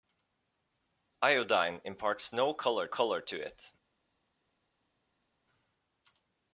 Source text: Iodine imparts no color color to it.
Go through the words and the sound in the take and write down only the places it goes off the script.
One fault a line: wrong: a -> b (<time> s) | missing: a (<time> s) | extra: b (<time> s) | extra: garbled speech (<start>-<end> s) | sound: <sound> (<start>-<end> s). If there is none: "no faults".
no faults